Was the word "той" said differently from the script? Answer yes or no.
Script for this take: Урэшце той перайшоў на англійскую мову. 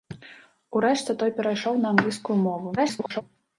no